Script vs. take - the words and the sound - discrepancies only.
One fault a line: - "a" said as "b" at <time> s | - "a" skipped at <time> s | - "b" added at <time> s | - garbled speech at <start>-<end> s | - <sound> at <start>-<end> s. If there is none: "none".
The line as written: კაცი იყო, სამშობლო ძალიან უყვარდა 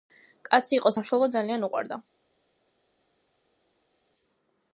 none